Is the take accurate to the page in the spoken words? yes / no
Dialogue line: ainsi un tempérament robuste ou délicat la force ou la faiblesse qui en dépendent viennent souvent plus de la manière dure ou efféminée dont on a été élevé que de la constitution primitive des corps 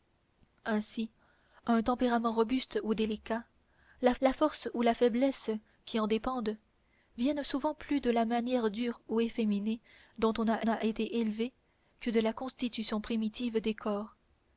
no